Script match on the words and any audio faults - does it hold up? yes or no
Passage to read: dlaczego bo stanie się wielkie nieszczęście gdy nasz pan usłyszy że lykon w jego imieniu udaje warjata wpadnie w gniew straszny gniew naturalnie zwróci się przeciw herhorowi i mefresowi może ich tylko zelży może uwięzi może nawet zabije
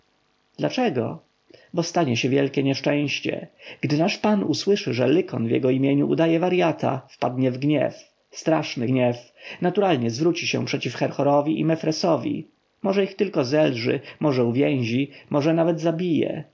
yes